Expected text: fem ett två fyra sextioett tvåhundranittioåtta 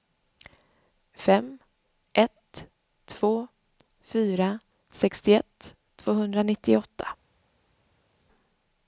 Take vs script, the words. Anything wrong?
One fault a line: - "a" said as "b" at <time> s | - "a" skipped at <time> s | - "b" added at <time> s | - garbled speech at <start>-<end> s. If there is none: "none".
none